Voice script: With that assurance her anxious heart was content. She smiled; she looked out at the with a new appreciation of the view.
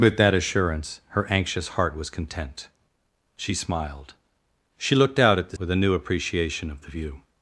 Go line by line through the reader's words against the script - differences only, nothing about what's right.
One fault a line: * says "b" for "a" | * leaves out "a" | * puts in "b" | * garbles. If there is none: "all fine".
all fine